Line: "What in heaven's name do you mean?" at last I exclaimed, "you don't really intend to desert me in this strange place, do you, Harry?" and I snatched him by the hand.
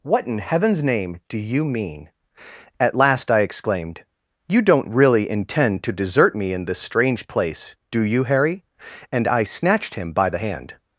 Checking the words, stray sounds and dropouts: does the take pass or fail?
pass